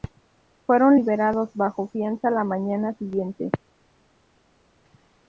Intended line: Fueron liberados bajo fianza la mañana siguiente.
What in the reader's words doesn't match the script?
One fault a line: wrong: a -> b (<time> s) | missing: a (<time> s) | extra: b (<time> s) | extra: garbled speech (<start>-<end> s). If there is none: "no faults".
no faults